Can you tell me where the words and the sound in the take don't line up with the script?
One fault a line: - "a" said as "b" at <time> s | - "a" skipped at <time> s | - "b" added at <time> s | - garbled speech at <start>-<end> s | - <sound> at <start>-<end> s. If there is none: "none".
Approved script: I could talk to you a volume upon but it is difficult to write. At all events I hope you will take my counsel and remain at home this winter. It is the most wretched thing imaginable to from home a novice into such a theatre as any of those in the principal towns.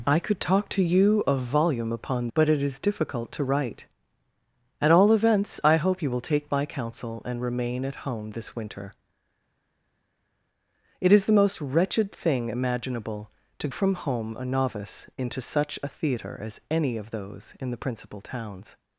none